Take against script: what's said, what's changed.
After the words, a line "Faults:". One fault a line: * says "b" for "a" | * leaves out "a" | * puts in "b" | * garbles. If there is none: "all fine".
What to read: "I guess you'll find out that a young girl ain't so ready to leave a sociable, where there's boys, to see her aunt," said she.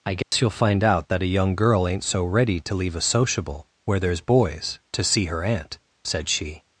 "I guess you'll find out that a young girl ain't so ready to leave a sociable, where there's boys, to see her aunt," said she.
Faults:
all fine